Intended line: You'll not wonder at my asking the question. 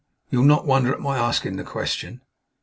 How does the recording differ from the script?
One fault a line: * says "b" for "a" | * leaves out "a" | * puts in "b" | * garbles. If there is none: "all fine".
all fine